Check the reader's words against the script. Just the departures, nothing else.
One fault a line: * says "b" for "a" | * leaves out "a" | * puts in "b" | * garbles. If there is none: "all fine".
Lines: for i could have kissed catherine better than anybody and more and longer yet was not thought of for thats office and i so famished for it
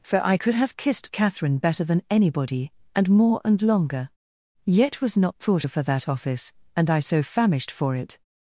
* says "that" for "thats"